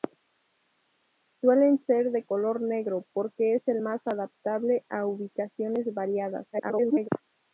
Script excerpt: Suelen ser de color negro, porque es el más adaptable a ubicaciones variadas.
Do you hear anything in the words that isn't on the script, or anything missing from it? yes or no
yes